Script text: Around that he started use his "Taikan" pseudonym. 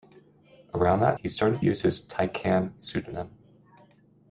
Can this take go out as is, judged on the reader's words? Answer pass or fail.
pass